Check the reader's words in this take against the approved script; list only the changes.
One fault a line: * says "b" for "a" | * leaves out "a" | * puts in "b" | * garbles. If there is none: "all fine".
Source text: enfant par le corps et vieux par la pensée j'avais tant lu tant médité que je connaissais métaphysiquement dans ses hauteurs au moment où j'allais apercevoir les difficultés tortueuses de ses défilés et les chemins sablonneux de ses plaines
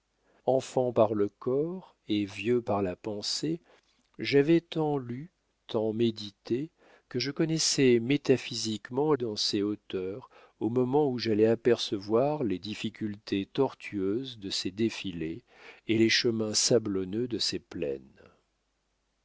all fine